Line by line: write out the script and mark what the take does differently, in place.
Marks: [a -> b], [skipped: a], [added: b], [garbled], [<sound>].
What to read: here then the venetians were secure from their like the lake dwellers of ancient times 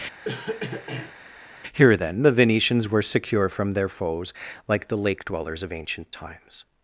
[cough] here then the venetians were secure from their [added: foes] like the lake dwellers of ancient times